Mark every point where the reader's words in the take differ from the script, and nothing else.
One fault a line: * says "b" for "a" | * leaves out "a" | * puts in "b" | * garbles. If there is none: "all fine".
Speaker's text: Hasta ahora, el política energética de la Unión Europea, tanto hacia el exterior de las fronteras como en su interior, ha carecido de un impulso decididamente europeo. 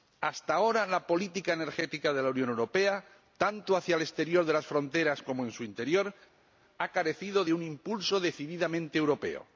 * says "la" for "el"